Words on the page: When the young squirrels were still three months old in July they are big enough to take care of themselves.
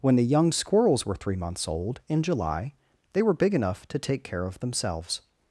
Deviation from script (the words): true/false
true